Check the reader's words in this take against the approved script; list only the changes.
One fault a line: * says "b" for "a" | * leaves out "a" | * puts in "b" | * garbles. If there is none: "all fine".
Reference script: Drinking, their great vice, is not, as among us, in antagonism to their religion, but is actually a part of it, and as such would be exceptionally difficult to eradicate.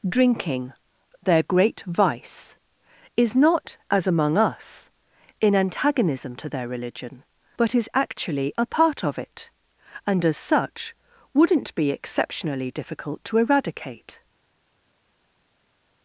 * says "wouldn't" for "would"